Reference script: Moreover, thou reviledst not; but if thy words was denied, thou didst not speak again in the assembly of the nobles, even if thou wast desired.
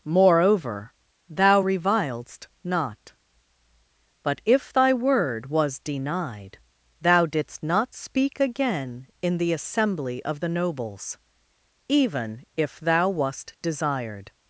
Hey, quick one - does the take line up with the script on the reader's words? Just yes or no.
no